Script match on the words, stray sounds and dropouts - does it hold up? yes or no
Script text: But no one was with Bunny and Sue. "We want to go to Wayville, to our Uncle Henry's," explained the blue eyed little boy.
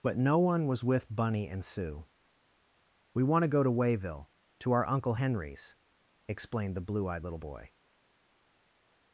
yes